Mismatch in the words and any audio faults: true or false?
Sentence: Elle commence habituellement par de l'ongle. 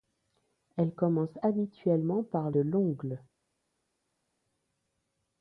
false